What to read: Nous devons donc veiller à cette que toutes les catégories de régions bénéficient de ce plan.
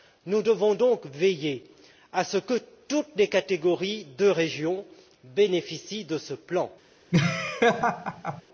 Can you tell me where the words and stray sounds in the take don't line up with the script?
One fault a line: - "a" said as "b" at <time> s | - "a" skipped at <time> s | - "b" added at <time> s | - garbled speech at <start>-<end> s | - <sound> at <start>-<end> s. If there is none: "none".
- "cette" said as "ce" at 2.2 s
- laugh at 7.1-8.4 s